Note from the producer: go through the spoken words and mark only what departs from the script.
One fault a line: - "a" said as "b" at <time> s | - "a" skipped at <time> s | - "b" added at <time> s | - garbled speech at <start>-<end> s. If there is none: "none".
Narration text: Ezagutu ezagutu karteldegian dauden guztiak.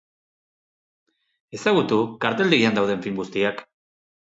- "ezagutu" skipped at 2.0 s
- "film" added at 3.1 s